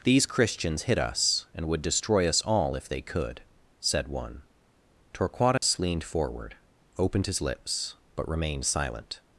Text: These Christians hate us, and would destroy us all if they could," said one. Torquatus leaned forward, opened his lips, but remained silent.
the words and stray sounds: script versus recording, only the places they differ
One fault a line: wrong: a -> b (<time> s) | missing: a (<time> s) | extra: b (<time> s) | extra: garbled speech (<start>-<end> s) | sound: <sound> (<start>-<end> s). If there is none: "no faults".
wrong: hate -> hit (0.8 s)
sound: dropout (5.6-5.6 s)